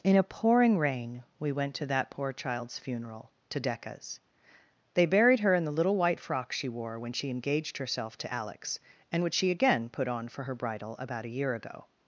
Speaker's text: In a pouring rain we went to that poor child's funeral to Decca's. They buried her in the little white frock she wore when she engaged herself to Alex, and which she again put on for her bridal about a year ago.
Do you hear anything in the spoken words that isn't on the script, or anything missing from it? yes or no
no